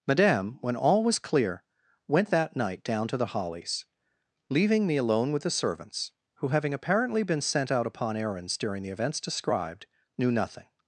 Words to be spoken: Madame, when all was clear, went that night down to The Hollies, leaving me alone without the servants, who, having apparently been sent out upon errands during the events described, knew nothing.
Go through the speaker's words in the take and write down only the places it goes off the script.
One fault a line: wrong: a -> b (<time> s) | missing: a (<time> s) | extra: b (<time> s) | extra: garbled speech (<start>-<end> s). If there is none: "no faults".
wrong: without -> with (5.3 s)